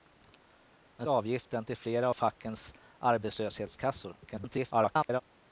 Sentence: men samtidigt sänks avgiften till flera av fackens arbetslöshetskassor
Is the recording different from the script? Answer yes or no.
yes